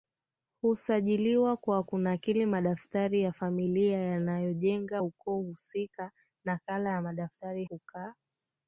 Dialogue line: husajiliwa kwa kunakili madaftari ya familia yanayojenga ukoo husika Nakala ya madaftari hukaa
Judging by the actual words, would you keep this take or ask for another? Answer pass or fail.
pass